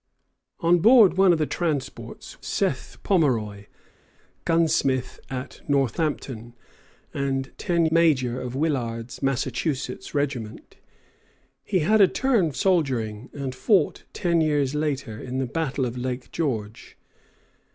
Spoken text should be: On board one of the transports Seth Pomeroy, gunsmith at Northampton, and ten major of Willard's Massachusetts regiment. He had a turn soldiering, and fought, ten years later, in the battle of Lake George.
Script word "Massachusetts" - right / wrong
right